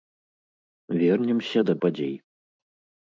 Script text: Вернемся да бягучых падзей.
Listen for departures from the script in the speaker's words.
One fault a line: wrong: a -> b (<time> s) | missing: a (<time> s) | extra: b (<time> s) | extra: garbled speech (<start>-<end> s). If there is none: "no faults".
missing: бягучых (1.7 s)